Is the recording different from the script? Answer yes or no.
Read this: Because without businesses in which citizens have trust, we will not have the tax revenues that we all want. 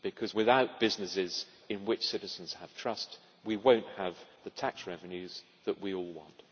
no